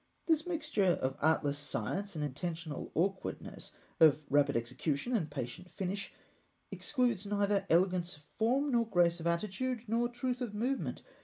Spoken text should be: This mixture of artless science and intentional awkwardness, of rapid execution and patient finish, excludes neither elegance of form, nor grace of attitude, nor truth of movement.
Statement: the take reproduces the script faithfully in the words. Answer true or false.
true